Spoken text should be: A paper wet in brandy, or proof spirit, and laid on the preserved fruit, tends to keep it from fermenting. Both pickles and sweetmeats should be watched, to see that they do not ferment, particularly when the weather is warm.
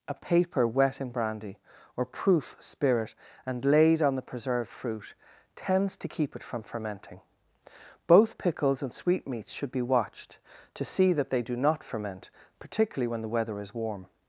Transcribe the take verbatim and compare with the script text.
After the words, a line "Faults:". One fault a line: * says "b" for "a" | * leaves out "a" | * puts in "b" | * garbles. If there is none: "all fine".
A paper wet in brandy, or proof spirit, and laid on the preserved fruit, tends to keep it from fermenting. Both pickles and sweetmeats should be watched, to see that they do not ferment, particularly when the weather is warm.
Faults:
all fine